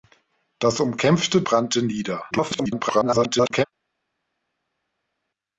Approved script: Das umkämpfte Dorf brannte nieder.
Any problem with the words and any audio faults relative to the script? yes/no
yes